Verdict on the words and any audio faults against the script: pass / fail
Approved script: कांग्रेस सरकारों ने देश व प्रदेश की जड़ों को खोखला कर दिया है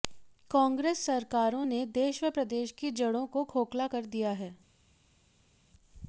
pass